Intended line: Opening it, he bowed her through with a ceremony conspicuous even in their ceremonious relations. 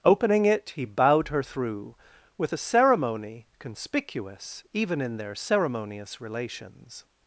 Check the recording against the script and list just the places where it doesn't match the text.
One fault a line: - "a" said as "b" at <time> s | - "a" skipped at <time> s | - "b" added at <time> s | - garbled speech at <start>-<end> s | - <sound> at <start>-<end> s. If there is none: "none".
none